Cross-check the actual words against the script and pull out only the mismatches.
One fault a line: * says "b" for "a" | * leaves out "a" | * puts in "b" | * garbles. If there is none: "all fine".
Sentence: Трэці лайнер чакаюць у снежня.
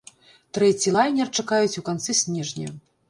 * puts in "канцы"